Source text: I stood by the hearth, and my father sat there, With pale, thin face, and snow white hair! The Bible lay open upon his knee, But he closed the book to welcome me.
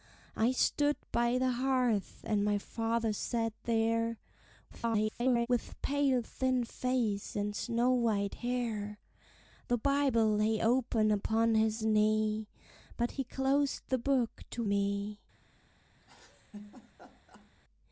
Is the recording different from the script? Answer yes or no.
yes